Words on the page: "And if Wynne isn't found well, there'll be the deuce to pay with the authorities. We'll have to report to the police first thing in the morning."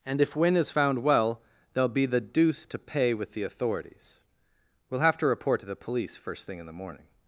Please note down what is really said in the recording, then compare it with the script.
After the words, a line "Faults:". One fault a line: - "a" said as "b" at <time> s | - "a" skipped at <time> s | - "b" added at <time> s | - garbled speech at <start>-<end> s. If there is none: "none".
"And if Wynne is found well, there'll be the deuce to pay with the authorities. We'll have to report to the police first thing in the morning."
Faults:
- "isn't" said as "is" at 0.6 s